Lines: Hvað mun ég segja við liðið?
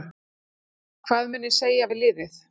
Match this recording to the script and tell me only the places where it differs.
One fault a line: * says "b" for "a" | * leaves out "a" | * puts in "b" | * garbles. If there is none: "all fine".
all fine